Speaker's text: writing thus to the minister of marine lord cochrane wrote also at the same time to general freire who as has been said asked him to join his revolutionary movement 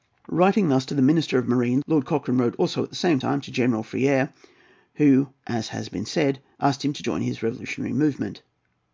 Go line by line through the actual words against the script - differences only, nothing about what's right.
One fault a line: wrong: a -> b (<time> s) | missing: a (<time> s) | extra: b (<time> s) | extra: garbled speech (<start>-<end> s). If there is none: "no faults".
no faults